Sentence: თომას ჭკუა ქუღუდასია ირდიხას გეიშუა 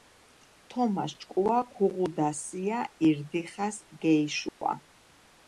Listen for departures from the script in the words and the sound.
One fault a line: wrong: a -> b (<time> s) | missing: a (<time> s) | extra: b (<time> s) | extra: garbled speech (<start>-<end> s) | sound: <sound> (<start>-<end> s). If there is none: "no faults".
sound: dropout (4.5-4.6 s)